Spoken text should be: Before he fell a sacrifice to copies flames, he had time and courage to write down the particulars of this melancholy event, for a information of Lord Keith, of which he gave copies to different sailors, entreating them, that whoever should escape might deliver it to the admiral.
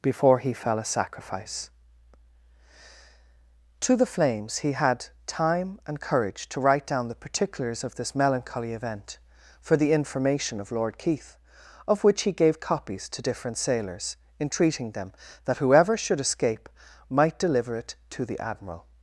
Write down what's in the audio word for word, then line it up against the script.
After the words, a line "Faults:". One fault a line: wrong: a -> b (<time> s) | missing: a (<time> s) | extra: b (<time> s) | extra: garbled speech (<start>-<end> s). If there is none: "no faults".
Before he fell a sacrifice to the flames, he had time and courage to write down the particulars of this melancholy event, for the information of Lord Keith, of which he gave copies to different sailors, entreating them, that whoever should escape might deliver it to the admiral.
Faults:
wrong: copies -> the (4.0 s)
wrong: a -> the (9.8 s)